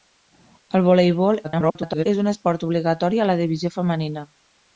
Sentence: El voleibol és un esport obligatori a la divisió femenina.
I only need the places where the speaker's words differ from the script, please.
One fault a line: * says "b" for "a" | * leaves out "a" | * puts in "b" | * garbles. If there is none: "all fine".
* garbles